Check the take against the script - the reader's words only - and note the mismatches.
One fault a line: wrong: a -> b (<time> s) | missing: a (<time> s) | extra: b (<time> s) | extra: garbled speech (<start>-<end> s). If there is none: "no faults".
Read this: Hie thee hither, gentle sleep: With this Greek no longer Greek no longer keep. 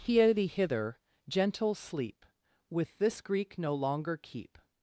missing: Greek no longer (4.2 s)